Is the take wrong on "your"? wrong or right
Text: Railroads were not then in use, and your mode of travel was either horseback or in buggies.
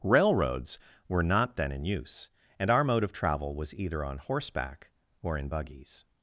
wrong